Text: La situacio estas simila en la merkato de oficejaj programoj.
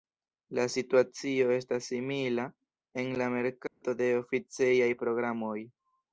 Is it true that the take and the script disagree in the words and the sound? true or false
true